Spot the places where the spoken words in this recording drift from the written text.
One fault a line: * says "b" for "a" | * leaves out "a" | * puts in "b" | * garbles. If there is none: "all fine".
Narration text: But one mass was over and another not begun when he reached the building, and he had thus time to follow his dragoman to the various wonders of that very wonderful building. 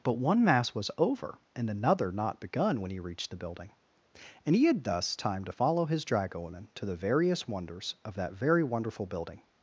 all fine